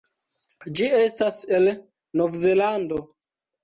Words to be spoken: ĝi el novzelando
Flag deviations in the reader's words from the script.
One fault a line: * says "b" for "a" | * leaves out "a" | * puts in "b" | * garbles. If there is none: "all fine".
* puts in "estas"